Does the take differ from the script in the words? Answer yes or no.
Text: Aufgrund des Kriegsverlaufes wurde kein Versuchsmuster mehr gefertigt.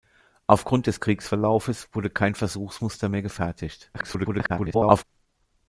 yes